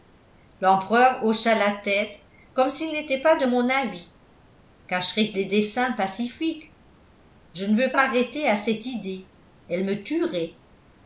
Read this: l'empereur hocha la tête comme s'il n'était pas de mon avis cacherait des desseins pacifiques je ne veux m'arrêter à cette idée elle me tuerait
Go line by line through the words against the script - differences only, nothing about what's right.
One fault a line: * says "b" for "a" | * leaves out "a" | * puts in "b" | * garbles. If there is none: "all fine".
all fine